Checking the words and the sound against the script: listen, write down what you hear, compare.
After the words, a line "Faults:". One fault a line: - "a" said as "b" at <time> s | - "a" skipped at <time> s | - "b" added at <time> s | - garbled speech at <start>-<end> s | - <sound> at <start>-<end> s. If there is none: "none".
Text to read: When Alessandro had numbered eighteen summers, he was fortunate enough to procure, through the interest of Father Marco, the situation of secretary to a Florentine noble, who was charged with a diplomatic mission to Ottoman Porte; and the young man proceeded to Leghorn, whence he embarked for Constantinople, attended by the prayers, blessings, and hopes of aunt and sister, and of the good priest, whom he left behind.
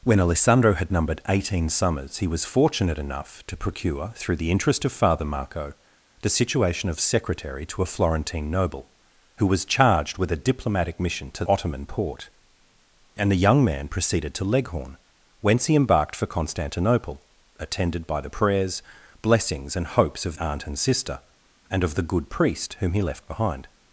When Alessandro had numbered eighteen summers, he was fortunate enough to procure, through the interest of Father Marco, the situation of secretary to a Florentine noble, who was charged with a diplomatic mission to Ottoman Porte; and the young man proceeded to Leghorn, whence he embarked for Constantinople, attended by the prayers, blessings, and hopes of aunt and sister, and of the good priest, whom he left behind.
Faults:
none